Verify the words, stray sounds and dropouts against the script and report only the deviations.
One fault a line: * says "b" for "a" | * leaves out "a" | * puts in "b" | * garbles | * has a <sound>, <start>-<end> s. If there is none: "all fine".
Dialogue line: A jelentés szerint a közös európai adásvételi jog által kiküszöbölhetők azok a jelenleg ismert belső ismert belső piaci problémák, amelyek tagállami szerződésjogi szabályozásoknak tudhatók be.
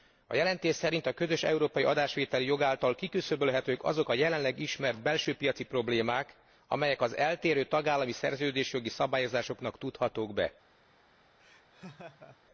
* leaves out "ismert belső"
* puts in "az eltérő"
* has a laugh, 11.4-12.4 s